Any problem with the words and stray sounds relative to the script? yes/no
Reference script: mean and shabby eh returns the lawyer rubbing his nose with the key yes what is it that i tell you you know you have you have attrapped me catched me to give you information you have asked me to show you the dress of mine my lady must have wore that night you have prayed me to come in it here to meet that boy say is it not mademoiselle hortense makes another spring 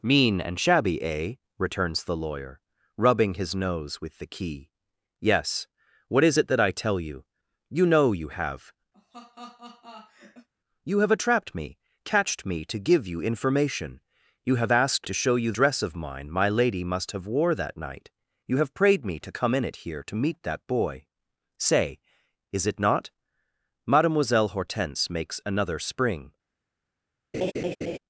yes